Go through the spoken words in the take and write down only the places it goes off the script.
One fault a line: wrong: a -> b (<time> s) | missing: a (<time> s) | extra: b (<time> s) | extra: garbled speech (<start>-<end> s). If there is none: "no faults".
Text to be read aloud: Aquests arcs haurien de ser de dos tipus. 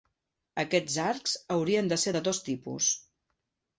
no faults